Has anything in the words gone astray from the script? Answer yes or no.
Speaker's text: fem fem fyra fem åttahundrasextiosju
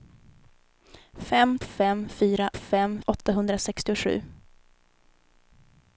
no